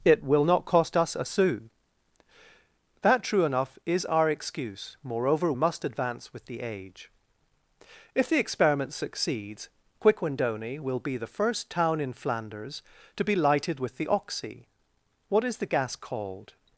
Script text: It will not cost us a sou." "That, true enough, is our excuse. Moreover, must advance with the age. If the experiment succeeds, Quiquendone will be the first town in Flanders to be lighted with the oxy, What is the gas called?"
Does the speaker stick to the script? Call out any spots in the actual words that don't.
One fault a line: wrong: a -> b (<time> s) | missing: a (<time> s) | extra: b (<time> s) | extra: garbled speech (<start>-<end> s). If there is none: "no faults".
no faults